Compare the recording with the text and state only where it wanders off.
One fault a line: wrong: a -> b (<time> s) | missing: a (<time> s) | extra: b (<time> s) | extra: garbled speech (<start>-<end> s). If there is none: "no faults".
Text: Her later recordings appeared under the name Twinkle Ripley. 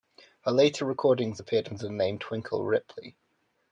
no faults